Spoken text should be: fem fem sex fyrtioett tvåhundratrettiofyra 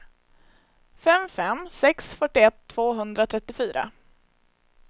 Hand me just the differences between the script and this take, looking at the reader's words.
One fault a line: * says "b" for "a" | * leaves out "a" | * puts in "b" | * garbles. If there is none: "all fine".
all fine